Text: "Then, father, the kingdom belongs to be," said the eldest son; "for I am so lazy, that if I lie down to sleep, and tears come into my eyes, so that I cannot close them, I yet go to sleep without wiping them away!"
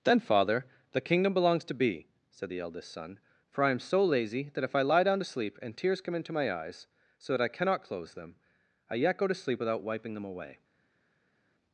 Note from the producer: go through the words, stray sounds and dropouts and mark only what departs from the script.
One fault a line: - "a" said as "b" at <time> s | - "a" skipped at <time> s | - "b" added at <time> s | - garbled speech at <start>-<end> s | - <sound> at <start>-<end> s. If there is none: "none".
none